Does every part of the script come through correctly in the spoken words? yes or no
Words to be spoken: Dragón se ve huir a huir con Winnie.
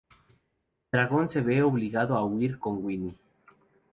no